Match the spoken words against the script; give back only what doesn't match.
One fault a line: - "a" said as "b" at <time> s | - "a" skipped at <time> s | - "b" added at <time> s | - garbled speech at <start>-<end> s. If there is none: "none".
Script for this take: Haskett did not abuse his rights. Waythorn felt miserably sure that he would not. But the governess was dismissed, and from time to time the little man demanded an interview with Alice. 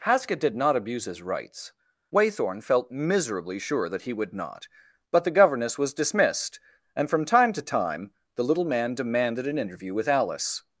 none